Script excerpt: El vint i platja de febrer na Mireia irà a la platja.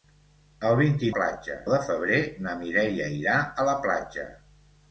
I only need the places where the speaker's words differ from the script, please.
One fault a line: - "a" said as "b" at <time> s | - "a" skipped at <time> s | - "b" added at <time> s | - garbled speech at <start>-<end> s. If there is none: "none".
none